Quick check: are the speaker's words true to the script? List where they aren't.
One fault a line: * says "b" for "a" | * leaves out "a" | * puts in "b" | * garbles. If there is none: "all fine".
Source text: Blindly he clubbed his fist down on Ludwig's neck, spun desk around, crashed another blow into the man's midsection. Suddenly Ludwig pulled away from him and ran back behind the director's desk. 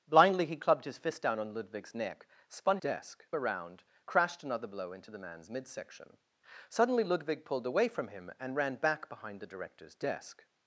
all fine